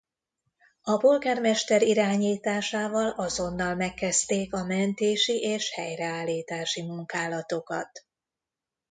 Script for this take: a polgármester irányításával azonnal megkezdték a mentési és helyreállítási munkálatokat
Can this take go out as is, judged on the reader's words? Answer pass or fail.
pass